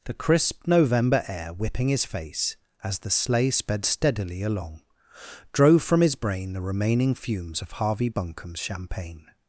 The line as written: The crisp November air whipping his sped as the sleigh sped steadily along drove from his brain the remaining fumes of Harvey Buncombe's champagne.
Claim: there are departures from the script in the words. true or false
true